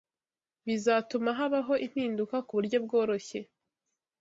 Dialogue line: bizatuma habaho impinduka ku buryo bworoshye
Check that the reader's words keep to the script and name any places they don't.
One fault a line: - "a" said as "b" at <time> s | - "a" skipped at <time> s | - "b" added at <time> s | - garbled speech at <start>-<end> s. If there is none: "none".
none